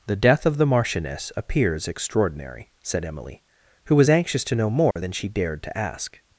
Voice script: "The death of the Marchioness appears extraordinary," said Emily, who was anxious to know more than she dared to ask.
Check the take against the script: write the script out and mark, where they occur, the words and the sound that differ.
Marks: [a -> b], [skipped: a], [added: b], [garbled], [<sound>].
"The death of the Marchioness appears extraordinary," said Emily, who was anxious to know more [dropout] than she dared to ask.